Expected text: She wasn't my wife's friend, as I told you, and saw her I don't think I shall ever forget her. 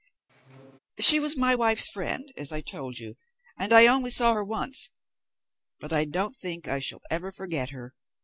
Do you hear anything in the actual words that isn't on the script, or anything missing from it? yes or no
yes